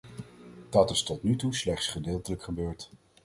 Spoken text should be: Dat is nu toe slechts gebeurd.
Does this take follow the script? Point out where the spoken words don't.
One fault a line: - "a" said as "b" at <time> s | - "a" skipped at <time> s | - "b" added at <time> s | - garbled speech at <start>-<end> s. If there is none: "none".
- "tot" added at 1.0 s
- "gedeeltelijk" added at 1.9 s